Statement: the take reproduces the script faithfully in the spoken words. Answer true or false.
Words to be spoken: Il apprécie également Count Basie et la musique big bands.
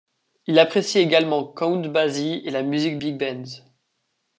true